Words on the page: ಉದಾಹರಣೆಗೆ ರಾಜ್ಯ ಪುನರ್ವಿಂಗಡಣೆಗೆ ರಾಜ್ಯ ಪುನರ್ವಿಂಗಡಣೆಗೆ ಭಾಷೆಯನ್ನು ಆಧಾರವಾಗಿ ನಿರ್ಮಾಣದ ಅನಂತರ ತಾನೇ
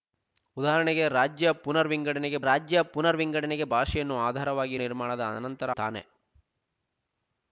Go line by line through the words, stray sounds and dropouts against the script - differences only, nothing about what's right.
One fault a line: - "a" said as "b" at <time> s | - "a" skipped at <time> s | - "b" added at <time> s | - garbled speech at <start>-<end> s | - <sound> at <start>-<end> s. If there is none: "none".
none